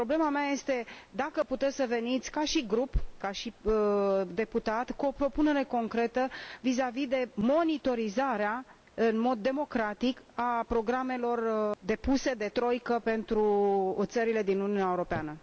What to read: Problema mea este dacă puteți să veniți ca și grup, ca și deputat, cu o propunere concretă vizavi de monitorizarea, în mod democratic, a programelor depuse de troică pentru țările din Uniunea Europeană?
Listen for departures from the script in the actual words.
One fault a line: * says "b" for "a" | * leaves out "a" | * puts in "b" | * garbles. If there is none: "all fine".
all fine